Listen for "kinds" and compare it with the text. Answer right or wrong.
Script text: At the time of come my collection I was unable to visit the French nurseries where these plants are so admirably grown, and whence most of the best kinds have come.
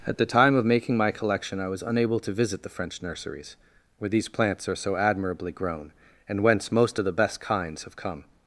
right